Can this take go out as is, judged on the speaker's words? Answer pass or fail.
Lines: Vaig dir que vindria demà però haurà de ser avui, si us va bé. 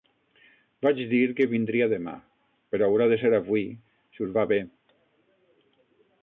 pass